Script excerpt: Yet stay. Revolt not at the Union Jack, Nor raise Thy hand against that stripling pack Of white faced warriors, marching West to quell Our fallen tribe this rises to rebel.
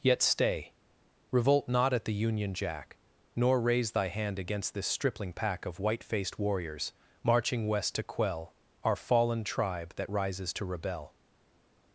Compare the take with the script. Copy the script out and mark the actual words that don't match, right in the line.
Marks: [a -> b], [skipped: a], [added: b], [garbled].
Yet stay. Revolt not at the Union Jack, Nor raise Thy hand against [that -> this] stripling pack Of white faced warriors, marching West to quell Our fallen tribe [this -> that] rises to rebel.